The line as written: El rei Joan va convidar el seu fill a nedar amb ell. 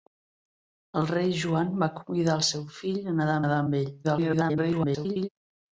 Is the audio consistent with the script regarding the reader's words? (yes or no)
no